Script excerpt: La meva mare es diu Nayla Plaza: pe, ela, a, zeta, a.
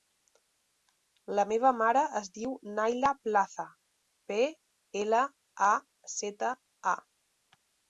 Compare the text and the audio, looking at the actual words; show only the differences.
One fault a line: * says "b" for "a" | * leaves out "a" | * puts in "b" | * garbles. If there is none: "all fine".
all fine